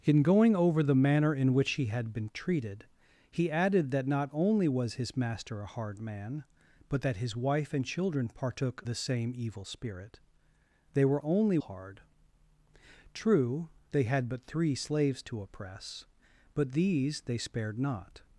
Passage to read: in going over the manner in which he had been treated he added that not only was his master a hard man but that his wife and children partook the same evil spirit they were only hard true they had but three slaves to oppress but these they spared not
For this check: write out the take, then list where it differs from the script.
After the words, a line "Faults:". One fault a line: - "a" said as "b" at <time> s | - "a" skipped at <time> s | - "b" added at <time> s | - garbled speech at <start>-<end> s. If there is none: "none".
in going over the manner in which he had been treated he added that not only was his master a hard man but that his wife and children partook the same evil spirit they were only hard true they had but three slaves to oppress but these they spared not
Faults:
none